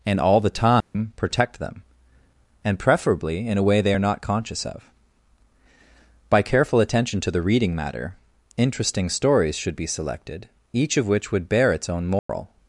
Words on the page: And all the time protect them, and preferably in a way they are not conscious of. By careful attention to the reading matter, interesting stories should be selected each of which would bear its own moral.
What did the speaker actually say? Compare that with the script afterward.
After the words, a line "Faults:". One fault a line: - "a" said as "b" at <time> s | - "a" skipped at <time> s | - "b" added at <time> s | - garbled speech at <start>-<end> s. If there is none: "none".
And all the time protect them, and preferably in a way they are not conscious of. By careful attention to the reading matter, interesting stories should be selected each of which would bear its own moral.
Faults:
none